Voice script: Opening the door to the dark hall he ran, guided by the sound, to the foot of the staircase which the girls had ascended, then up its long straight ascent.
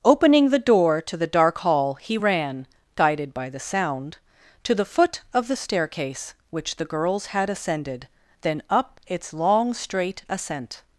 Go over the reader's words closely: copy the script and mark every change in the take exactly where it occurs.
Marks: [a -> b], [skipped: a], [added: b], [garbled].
Opening the door to the dark hall he ran, guided by the sound, to the foot of the staircase which the girls had ascended, then up its long straight ascent.